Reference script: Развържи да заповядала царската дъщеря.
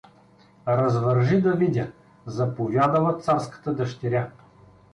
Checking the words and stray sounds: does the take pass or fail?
fail